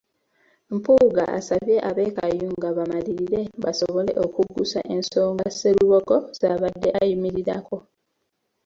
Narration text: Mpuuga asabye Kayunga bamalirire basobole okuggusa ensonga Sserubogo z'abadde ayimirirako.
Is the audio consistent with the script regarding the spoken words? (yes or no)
no